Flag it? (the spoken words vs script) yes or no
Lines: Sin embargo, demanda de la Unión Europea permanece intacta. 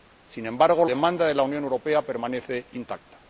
no